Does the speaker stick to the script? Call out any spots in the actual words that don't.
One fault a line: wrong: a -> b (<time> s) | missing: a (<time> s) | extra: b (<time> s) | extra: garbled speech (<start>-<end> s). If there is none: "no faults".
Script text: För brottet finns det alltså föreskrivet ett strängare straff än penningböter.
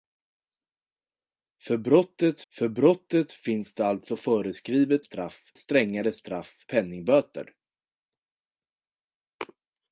extra: för brottet (2.5 s)
wrong: ett -> straff (5.0 s)
missing: än (6.7 s)